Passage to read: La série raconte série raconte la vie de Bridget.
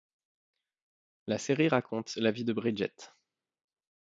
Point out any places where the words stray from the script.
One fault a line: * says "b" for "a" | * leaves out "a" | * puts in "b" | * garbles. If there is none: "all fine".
* leaves out "série raconte"